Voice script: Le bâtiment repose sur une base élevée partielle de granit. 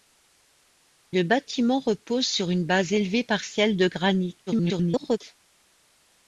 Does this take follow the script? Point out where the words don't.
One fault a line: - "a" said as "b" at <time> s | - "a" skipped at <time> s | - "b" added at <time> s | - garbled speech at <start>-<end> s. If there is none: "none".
- garbled speech at 4.5-5.2 s